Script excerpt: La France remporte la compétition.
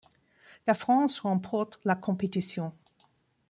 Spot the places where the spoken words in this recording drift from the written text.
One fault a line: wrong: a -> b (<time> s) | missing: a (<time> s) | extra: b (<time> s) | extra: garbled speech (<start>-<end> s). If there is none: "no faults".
no faults